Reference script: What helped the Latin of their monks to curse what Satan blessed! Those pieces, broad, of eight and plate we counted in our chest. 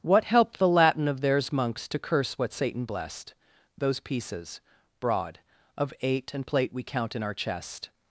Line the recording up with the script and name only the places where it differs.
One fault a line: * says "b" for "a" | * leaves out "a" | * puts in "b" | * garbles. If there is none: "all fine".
* says "theirs" for "their"
* says "count" for "counted"